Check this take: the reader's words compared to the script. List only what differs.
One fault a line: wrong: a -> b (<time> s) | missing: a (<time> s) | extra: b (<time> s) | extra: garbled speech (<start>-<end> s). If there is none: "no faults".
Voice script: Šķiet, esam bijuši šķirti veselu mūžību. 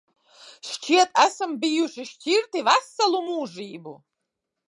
no faults